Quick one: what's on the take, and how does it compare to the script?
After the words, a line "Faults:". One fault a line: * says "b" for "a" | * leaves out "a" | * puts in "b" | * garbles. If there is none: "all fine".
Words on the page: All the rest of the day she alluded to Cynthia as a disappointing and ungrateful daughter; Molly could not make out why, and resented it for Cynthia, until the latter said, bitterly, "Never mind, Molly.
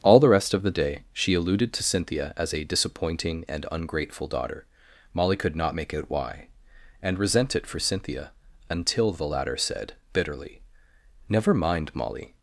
All the rest of the day she alluded to Cynthia as a disappointing and ungrateful daughter; Molly could not make out why, and resent it for Cynthia, until the latter said, bitterly, "Never mind, Molly.
Faults:
* says "resent" for "resented"